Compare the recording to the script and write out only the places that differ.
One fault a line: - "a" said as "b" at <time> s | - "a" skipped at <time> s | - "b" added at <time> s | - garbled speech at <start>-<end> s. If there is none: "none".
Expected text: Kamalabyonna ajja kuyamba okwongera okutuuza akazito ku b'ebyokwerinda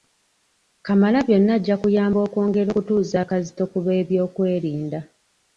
none